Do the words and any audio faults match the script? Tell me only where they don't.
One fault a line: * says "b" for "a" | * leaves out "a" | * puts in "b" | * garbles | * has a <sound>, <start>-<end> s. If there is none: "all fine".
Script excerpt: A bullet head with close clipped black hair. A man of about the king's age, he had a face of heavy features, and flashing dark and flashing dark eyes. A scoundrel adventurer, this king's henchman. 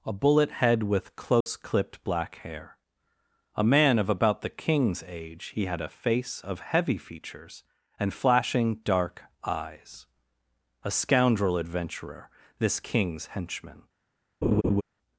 * has a dropout, 1.4-1.5 s
* leaves out "and flashing dark"
* has a laugh, 14.4-14.8 s